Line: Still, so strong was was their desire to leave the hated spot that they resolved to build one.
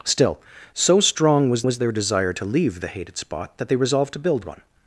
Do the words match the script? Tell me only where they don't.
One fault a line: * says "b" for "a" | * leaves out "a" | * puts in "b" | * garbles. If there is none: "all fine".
all fine